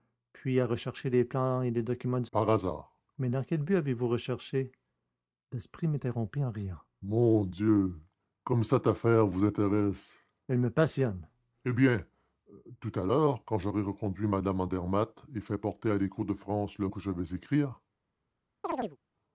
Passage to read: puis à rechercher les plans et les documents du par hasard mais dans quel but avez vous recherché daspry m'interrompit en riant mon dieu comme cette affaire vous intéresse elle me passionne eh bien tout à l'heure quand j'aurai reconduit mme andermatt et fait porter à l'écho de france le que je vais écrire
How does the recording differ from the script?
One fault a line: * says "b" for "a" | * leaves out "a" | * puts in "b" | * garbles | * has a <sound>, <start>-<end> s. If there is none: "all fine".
* has a chirp, 18.6-19.0 s